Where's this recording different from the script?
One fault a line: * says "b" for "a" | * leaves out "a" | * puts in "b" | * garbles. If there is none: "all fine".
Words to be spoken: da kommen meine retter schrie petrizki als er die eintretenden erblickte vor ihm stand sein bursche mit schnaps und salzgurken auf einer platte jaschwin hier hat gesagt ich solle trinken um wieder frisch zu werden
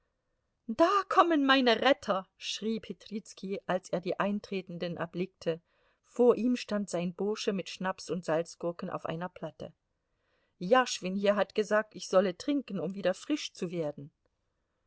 all fine